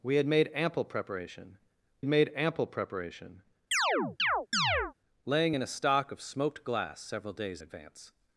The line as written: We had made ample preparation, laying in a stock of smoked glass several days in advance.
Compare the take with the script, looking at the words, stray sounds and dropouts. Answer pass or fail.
fail